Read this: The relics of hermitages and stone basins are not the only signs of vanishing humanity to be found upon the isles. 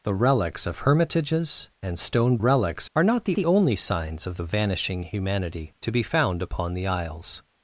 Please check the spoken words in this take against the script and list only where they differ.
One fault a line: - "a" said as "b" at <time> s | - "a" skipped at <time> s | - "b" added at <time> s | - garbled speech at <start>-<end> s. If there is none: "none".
- "basins" said as "relics" at 2.4 s
- "the" added at 3.3 s
- "of" added at 4.4 s